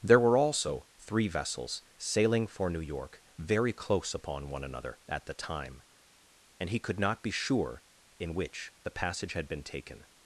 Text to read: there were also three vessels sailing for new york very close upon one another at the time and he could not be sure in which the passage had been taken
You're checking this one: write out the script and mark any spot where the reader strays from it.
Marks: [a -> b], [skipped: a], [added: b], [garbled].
there were also three vessels sailing for new york very close upon one another at the time and he could not be sure in which the passage had been taken